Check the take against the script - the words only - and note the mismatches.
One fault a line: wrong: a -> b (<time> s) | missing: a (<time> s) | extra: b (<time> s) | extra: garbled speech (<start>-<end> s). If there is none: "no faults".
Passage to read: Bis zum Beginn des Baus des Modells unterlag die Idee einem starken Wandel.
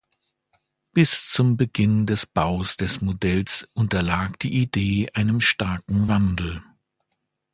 no faults